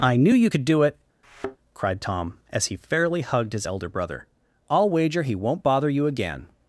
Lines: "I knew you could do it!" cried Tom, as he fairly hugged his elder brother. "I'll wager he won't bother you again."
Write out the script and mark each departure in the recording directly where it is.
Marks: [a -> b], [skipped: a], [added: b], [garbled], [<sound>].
"I knew you could do it!" [thud] cried Tom, as he fairly hugged his elder brother. "I'll wager he won't bother you again."